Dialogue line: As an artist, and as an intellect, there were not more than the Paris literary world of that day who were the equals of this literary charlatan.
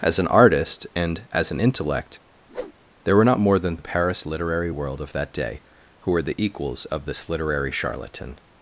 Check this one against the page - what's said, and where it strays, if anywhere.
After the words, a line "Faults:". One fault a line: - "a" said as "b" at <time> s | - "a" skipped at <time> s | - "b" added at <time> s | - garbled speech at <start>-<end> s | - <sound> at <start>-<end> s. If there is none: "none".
As an artist, and as an intellect, there were not more than the Paris literary world of that day who were the equals of this literary charlatan.
Faults:
- whoosh at 2.5-2.7 s